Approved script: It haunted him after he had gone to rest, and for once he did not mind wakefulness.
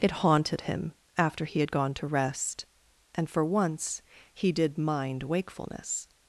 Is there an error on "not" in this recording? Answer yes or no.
yes